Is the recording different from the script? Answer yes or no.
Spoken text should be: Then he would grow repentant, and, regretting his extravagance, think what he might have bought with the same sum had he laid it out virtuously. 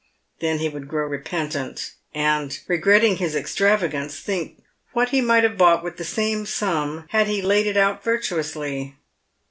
no